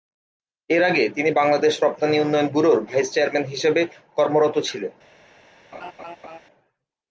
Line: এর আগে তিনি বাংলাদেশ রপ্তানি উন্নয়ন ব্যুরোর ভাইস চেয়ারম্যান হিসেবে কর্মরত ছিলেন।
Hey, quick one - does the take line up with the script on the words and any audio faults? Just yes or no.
no